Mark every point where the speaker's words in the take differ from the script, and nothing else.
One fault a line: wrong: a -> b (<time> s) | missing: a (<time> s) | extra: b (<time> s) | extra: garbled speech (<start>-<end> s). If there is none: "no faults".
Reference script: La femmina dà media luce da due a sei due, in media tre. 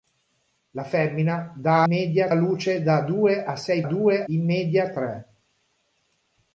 no faults